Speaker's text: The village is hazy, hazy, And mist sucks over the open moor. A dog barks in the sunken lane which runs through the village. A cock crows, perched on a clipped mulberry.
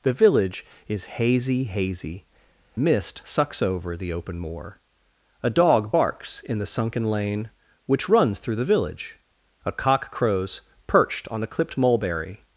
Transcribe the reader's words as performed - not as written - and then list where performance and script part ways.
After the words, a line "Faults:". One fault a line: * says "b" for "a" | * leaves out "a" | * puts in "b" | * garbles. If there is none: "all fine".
The village is hazy, hazy, Mist sucks over the open moor. A dog barks in the sunken lane which runs through the village. A cock crows, perched on a clipped mulberry.
Faults:
* leaves out "And"